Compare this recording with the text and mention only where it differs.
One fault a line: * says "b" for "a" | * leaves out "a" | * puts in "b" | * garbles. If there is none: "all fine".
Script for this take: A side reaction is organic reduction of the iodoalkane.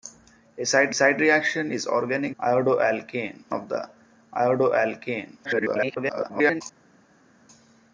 * puts in "side"
* says "iodoalkane" for "reduction"
* garbles